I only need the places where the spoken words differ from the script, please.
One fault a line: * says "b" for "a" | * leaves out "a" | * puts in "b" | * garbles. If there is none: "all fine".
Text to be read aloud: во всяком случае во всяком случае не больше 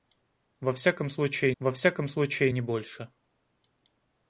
all fine